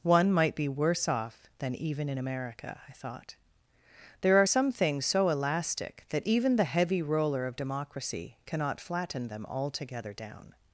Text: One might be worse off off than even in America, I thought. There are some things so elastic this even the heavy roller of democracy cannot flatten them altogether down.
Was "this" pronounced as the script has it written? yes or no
no